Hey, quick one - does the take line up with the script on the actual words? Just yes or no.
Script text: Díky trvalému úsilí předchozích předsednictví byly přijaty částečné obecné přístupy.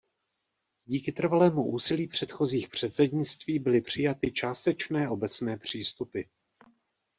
yes